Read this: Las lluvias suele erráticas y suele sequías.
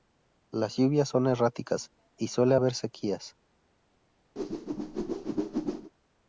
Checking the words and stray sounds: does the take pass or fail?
fail